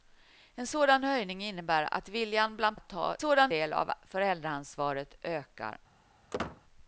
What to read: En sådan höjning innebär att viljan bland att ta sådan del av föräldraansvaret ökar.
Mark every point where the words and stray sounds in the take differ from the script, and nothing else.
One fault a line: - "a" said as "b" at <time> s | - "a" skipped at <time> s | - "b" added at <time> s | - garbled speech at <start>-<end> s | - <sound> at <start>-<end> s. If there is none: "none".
- squeak at 6.3-6.6 s